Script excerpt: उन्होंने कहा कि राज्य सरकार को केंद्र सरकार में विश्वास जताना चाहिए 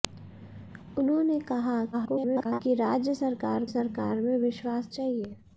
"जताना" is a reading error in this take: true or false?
true